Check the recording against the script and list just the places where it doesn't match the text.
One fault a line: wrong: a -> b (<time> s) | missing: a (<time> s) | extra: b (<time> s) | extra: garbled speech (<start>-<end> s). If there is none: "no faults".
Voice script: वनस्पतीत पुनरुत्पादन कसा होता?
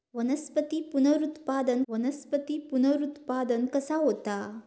extra: वनस्पतीत पुनरुत्पादन (1.9 s)